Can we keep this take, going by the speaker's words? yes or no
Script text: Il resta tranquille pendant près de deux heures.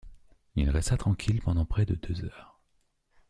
yes